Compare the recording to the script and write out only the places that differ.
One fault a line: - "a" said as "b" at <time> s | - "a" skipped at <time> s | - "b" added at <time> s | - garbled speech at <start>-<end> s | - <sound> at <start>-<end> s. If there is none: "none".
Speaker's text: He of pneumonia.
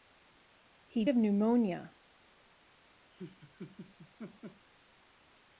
- laugh at 3.1-4.7 s